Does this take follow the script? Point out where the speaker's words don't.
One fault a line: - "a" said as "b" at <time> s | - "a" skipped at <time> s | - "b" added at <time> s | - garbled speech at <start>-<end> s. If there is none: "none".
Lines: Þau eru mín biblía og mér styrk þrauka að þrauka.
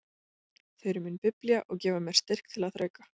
- "gefa" added at 1.9 s
- "þrauka" said as "til" at 2.5 s